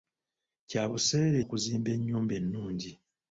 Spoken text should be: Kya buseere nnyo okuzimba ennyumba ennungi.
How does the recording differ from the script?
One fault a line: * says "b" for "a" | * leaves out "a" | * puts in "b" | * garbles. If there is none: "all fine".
* leaves out "nnyo"